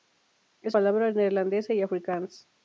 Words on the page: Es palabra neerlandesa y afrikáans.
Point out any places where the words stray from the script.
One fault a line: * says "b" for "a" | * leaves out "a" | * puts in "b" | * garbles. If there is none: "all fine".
all fine